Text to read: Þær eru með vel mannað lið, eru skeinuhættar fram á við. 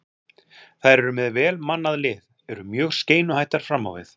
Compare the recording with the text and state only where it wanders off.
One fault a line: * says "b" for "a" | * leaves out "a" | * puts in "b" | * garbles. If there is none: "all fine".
* puts in "mjög"